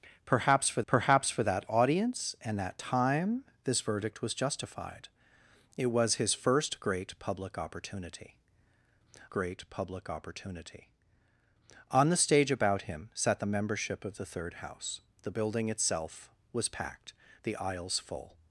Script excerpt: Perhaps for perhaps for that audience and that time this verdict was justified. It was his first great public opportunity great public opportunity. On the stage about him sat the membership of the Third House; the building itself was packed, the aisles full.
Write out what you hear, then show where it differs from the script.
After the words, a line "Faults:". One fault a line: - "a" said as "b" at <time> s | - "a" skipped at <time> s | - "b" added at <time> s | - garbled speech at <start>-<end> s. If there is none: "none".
Perhaps for perhaps for that audience and that time this verdict was justified. It was his first great public opportunity great public opportunity. On the stage about him sat the membership of the Third House; the building itself was packed, the aisles full.
Faults:
none